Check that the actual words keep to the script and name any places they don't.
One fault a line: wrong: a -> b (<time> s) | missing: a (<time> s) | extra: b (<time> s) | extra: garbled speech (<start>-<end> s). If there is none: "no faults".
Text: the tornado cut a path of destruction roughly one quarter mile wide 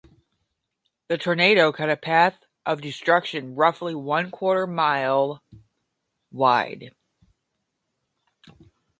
no faults